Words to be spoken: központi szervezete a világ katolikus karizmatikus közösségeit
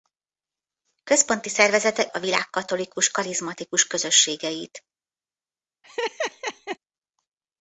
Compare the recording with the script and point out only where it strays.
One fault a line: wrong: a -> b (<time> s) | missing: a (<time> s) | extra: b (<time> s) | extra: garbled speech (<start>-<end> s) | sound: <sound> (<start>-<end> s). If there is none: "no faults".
sound: laugh (5.8-6.8 s)